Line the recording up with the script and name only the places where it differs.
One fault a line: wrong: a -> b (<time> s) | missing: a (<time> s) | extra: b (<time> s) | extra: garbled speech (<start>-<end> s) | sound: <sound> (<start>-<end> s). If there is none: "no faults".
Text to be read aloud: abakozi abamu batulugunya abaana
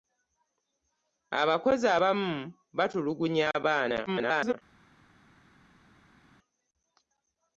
extra: garbled speech (4.1-4.5 s)